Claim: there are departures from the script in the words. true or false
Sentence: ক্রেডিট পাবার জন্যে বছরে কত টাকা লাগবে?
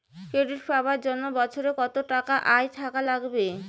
true